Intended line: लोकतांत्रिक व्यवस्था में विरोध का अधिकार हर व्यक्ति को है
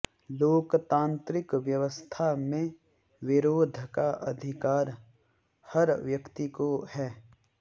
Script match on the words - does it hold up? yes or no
yes